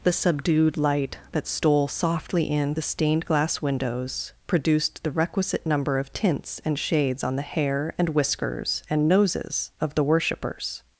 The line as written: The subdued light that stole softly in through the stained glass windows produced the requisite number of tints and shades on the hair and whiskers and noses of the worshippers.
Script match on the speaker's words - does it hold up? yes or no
no